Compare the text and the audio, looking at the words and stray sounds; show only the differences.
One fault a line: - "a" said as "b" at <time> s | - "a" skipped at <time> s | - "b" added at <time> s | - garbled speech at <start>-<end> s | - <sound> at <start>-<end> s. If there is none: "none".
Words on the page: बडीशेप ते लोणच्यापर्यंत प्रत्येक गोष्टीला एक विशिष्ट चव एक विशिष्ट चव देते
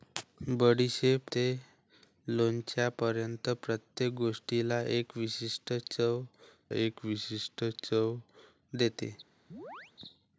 - chirp at 9.5-9.9 s